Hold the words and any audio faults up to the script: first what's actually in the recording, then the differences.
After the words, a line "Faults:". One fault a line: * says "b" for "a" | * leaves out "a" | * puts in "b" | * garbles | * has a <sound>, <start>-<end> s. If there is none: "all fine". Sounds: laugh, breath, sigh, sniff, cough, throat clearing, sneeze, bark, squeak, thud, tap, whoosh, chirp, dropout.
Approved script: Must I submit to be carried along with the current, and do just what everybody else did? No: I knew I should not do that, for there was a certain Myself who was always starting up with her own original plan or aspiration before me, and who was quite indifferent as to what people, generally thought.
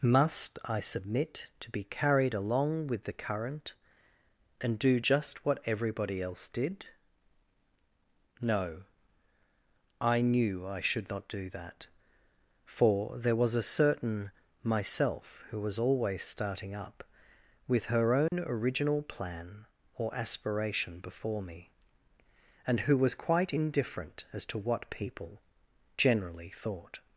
Must I submit to be carried along with the current, and do just what everybody else did? No: I knew I should not do that, for there was a certain Myself who was always starting up with her own original plan or aspiration before me, and who was quite indifferent as to what people, generally thought.
Faults:
* has a dropout, 18.3-18.3 s